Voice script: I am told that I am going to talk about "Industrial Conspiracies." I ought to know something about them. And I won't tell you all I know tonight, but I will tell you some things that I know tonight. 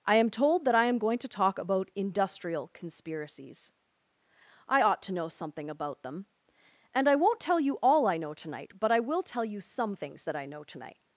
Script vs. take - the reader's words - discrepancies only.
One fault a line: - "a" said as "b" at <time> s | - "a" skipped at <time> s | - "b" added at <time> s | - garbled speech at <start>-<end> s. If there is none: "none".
none